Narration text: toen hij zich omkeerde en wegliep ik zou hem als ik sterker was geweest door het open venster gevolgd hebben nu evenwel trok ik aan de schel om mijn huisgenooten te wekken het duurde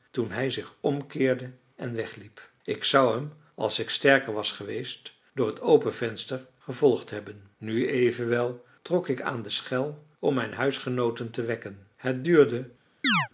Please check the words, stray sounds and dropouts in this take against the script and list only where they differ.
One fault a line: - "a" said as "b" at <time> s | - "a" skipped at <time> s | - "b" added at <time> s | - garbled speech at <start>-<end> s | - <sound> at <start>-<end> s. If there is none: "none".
- chirp at 13.0-13.3 s